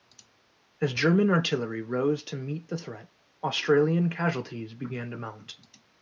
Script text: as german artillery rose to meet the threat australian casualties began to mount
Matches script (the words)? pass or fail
pass